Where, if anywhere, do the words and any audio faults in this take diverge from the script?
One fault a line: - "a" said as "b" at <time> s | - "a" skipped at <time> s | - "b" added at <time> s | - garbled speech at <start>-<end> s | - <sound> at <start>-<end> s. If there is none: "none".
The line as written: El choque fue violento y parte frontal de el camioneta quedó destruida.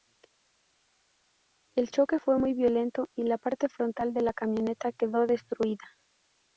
- "muy" added at 2.4 s
- "la" added at 3.2 s
- "el" said as "la" at 4.2 s